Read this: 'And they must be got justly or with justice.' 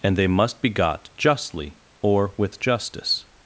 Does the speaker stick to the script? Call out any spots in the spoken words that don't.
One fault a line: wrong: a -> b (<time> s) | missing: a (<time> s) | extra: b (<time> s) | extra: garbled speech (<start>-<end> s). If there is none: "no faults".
no faults